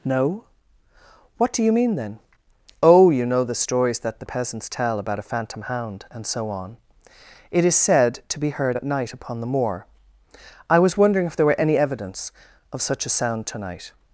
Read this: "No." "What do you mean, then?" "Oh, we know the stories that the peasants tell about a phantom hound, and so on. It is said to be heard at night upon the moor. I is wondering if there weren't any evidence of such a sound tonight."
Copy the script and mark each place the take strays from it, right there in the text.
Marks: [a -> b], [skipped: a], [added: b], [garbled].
"No." "What do you mean, then?" "Oh, [we -> you] know the stories that the peasants tell about a phantom hound, and so on. It is said to be heard at night upon the moor. I [is -> was] wondering if there [weren't -> were] any evidence of such a sound tonight."